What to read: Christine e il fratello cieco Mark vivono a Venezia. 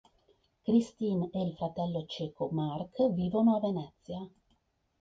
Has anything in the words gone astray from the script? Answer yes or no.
no